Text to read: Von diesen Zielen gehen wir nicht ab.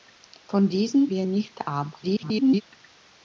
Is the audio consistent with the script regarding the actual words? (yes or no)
no